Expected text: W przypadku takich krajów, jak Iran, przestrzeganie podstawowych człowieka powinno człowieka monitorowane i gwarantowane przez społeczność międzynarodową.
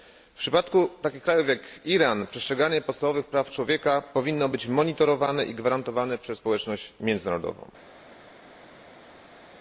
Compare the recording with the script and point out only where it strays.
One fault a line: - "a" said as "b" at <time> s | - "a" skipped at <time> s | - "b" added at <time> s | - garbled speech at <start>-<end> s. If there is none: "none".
- "praw" added at 3.2 s
- "człowieka" said as "być" at 4.5 s